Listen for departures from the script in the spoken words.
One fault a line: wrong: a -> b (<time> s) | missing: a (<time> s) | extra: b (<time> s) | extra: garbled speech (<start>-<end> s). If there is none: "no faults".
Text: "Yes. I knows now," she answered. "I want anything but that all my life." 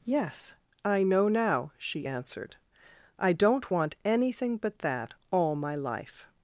wrong: knows -> know (1.0 s)
extra: don't (3.3 s)